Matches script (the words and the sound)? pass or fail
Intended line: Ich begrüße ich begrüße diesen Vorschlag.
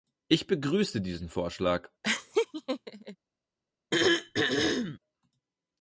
fail